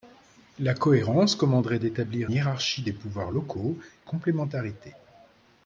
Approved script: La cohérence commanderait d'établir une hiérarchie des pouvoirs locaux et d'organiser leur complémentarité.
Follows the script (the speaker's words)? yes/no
no